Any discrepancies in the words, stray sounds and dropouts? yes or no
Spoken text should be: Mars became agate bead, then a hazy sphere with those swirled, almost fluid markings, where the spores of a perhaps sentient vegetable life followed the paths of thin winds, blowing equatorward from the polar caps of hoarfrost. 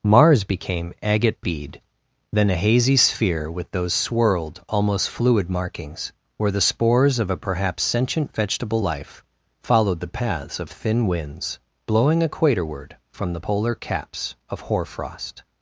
no